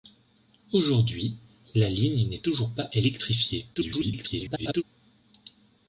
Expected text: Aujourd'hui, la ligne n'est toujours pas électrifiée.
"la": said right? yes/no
yes